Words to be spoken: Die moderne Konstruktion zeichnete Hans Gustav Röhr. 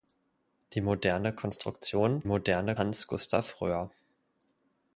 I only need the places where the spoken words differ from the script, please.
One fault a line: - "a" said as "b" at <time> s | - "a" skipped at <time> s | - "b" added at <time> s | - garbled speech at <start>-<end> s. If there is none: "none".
- "zeichnete" said as "moderne" at 2.2 s